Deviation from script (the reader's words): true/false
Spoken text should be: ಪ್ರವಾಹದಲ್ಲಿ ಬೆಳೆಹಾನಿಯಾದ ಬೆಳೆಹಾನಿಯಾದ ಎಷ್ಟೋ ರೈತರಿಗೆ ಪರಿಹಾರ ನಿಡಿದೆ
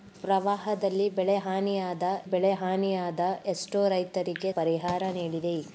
false